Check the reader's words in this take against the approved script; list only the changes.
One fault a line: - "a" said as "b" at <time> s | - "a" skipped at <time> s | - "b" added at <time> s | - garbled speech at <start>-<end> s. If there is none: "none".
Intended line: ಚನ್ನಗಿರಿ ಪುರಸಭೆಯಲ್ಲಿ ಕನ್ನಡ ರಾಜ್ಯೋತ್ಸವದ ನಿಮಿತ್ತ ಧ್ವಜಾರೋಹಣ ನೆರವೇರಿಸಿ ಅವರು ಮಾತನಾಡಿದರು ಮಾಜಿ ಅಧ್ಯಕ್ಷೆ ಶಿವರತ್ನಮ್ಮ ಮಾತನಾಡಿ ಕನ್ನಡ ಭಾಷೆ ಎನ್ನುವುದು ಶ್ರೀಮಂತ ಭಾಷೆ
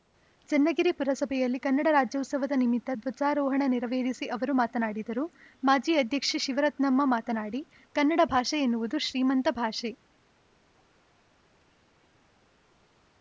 none